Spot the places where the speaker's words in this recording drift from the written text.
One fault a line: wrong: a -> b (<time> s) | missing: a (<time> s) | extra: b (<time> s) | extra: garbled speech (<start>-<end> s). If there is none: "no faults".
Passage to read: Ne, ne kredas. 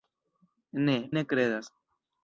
no faults